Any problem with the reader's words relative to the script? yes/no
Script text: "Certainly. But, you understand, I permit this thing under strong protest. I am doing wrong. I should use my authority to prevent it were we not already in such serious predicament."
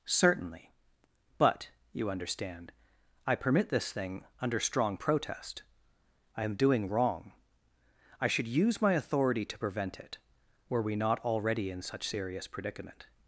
no